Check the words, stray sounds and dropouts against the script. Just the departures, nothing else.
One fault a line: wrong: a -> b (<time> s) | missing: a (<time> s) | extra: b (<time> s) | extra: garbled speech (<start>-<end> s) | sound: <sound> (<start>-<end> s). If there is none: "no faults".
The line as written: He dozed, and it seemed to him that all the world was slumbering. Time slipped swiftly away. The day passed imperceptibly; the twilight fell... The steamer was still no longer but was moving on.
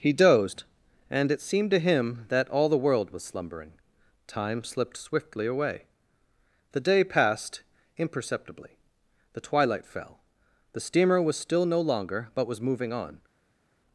no faults